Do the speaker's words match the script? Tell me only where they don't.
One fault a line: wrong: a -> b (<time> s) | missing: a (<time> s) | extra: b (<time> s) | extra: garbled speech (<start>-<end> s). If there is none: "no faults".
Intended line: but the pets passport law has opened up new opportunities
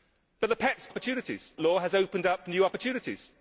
wrong: passport -> opportunities (0.9 s)